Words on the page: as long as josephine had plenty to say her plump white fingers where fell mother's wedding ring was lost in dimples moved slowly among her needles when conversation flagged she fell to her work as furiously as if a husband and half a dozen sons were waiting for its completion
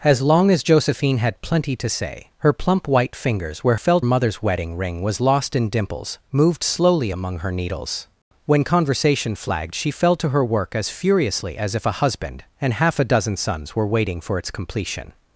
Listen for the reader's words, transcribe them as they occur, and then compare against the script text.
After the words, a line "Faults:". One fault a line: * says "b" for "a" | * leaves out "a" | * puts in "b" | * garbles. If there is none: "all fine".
as long as josephine had plenty to say her plump white fingers where fell mother's wedding ring was lost in dimples moved slowly among her needles when conversation flagged she fell to her work as furiously as if a husband and half a dozen sons were waiting for its completion
Faults:
all fine